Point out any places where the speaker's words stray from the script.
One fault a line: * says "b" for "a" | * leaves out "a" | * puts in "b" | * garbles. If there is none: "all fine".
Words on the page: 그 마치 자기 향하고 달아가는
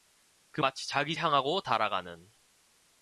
all fine